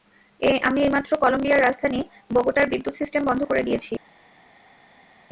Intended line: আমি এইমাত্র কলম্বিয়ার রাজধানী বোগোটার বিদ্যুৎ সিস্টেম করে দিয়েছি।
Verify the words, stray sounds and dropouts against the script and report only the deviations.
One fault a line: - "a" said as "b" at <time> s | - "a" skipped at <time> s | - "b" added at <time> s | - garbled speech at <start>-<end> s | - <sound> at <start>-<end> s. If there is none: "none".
- "বন্ধ" added at 3.3 s